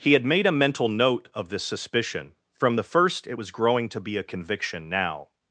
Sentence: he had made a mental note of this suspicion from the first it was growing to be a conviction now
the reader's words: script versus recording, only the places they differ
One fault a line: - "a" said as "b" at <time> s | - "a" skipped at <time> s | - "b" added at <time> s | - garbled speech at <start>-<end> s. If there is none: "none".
none